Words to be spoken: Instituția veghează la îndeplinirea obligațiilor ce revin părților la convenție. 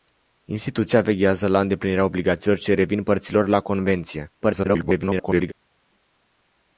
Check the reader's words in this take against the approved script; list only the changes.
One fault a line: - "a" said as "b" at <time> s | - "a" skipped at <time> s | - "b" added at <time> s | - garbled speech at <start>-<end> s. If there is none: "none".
- garbled speech at 4.4-5.5 s